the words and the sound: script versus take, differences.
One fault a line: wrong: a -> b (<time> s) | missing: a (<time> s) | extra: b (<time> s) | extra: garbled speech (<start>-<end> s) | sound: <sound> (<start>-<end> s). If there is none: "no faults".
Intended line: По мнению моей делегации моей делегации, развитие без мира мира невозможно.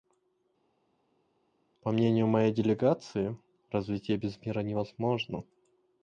missing: моей делегации (3.4 s)
missing: мира (4.6 s)